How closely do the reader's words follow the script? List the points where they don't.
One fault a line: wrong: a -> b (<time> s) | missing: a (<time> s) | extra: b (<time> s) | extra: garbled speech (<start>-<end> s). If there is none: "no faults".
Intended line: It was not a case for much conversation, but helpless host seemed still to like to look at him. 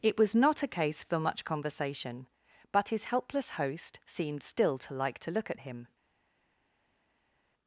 extra: his (2.9 s)